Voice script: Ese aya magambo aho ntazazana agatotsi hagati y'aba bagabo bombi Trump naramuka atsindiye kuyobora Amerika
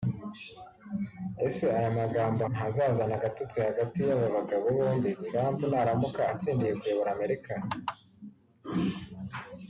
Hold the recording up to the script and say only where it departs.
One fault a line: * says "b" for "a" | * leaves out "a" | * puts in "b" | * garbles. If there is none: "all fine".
* leaves out "aho"